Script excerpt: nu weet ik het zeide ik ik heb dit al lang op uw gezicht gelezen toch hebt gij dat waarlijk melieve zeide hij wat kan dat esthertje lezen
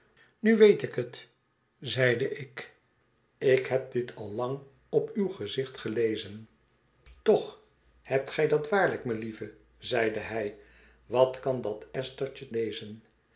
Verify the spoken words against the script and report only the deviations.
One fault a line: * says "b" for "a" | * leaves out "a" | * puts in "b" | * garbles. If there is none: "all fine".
all fine